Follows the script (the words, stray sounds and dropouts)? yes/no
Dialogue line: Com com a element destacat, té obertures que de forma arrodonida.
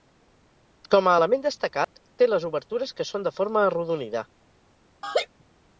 no